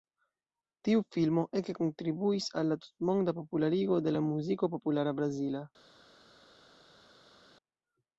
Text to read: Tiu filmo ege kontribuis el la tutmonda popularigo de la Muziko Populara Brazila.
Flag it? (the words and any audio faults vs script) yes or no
yes